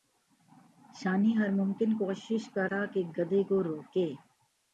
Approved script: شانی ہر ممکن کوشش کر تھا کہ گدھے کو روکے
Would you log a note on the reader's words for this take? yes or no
no